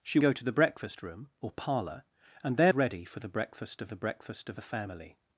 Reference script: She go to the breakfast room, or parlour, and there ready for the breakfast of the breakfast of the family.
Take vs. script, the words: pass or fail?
pass